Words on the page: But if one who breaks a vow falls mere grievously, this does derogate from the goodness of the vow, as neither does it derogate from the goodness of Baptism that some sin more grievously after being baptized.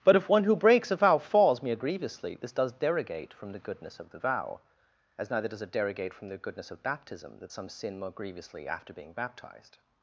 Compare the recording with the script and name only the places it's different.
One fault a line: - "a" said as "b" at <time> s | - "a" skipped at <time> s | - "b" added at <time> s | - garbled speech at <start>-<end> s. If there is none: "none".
none